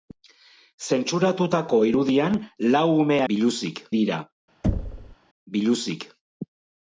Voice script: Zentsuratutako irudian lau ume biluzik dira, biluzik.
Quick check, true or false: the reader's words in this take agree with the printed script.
true